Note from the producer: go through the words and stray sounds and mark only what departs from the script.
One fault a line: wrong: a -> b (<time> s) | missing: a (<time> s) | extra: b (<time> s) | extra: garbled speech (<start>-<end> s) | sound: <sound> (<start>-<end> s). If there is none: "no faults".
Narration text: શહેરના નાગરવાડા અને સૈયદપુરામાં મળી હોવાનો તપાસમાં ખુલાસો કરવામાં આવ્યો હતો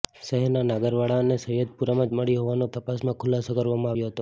no faults